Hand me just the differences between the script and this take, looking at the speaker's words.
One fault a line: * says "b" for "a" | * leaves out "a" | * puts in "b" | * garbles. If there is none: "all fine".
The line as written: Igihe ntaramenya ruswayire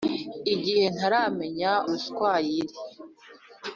all fine